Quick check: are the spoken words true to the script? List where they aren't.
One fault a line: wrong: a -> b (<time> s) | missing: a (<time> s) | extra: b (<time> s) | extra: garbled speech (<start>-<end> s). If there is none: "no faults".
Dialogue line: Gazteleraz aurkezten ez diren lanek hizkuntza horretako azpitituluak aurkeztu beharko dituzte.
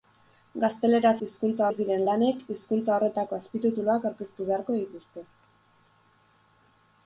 wrong: aurkezten -> hizkuntza (1.3 s)